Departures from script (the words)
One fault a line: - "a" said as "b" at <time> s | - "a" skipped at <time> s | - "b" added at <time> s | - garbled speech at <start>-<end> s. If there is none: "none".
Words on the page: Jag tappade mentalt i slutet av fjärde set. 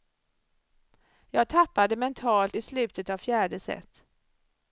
none